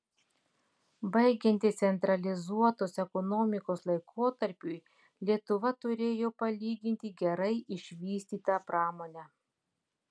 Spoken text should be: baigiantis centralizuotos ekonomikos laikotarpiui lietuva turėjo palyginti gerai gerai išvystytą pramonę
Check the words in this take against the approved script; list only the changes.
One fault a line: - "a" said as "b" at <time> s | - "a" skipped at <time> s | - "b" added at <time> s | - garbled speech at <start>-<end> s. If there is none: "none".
- "gerai" skipped at 7.5 s